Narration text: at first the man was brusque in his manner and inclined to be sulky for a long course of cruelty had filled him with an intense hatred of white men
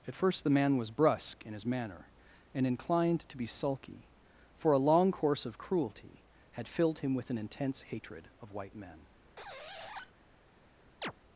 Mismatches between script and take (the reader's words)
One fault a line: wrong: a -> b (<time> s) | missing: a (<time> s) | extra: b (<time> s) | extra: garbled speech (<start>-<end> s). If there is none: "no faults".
no faults